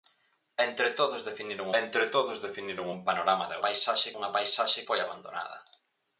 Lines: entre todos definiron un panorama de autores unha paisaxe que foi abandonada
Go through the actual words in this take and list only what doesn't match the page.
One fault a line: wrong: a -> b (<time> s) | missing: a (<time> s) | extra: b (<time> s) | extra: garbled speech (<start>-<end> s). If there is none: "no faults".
extra: entre todos definiron (1.8 s)
wrong: autores -> paisaxe (3.6 s)
missing: que (4.9 s)